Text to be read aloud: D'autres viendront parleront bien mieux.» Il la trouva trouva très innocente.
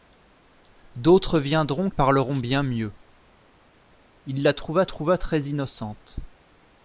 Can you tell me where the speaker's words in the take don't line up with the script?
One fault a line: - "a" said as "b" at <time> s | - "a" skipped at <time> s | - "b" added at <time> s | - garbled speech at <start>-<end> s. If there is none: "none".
none